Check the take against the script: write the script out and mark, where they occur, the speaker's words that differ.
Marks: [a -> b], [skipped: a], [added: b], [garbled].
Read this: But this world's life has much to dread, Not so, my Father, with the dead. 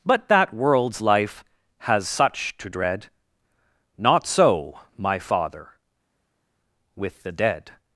But [this -> that] world's life has [much -> such] to dread, Not so, my Father, with the dead.